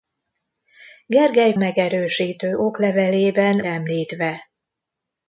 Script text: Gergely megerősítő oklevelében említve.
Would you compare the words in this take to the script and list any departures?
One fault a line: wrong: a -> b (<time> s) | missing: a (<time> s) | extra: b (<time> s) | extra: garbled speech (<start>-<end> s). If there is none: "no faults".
no faults